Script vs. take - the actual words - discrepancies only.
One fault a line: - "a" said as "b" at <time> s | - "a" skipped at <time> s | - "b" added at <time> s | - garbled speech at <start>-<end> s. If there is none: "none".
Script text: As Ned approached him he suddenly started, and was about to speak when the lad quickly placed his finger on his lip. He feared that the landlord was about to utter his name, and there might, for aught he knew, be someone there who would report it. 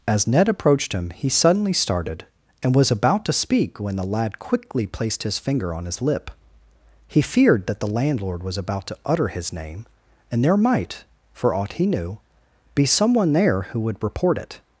none